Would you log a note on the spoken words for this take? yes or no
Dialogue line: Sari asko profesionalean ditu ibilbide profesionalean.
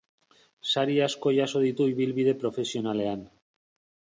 yes